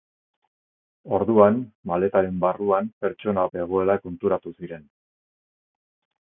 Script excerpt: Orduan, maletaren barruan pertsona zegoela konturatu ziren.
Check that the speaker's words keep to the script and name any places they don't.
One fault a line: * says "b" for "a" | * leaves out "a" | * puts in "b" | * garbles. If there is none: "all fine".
all fine